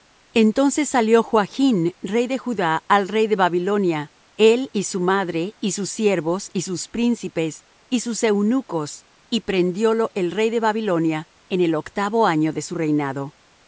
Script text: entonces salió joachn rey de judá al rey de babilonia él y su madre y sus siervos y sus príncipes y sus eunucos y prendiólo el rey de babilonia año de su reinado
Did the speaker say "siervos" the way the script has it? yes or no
yes